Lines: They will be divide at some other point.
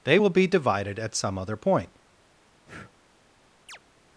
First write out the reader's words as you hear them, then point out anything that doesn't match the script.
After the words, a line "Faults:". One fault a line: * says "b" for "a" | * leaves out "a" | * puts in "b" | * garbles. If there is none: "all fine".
They will be divided at some other point.
Faults:
* says "divided" for "divide"